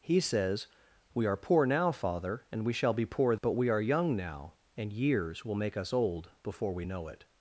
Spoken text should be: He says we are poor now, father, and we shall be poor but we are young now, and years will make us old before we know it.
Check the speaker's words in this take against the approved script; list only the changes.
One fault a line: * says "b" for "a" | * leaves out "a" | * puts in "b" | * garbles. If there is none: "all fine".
all fine